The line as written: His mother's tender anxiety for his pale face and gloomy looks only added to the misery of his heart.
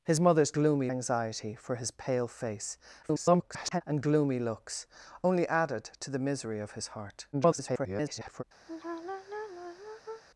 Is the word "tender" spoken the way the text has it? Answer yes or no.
no